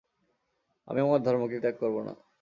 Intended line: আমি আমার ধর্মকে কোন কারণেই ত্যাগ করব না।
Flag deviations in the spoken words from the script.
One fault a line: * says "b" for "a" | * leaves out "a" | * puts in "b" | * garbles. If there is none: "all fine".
* leaves out "কোন কারণেই"